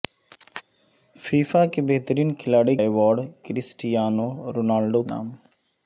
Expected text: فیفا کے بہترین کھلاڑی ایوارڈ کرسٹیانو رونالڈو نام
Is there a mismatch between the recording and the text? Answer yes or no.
no